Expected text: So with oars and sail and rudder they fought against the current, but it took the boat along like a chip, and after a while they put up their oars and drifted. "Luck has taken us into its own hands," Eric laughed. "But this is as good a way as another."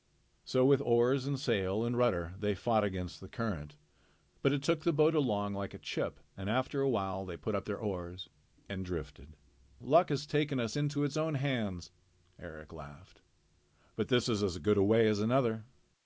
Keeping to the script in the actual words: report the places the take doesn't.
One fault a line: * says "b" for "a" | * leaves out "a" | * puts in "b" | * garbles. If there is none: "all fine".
all fine